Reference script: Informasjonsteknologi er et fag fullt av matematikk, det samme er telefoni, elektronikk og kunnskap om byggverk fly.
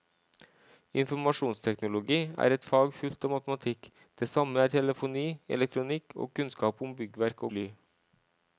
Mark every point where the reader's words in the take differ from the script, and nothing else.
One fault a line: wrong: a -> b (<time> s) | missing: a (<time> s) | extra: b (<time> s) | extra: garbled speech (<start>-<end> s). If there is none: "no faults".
no faults